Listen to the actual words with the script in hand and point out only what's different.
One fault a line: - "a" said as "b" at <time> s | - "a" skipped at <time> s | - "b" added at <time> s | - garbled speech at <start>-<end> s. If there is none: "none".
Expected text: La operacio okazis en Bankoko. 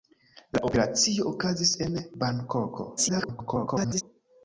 - garbled speech at 3.0-4.0 s